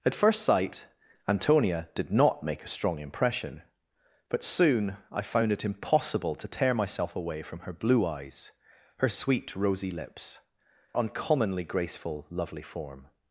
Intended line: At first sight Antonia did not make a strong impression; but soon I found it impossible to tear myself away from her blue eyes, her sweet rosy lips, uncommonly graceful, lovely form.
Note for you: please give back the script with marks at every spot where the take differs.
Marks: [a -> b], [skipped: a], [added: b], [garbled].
At first sight Antonia did not make a strong impression; but soon I found it impossible to tear myself away from her blue eyes, her sweet rosy lips, uncommonly graceful, lovely form.